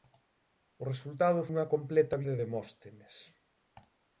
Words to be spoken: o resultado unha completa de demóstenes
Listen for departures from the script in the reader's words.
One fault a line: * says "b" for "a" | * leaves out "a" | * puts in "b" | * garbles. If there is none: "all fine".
all fine